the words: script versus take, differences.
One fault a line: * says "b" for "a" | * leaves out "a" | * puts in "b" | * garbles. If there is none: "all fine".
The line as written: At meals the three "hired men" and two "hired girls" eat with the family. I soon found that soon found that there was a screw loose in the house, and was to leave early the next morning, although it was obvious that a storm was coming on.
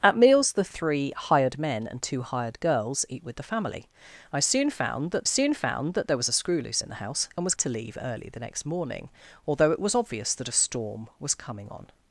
all fine